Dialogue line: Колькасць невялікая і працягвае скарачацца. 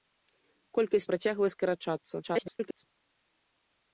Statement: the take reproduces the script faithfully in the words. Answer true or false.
false